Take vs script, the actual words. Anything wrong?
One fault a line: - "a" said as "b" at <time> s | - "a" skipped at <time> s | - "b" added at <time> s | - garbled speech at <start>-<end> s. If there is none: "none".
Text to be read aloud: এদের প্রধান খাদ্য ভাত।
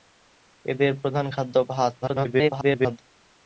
- garbled speech at 2.0-3.0 s